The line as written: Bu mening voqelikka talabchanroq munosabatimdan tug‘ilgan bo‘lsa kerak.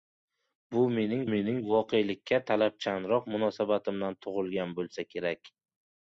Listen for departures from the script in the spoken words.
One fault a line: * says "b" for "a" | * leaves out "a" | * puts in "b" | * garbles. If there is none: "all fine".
* puts in "mening"